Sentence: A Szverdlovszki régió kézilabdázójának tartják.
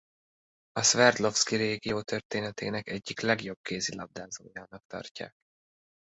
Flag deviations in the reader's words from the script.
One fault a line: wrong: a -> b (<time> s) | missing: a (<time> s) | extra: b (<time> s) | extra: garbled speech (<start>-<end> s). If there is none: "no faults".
extra: történetének egyik legjobb (2.0 s)